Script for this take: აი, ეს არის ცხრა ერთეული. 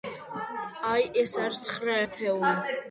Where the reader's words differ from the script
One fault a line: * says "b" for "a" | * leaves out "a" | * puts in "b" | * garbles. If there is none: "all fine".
all fine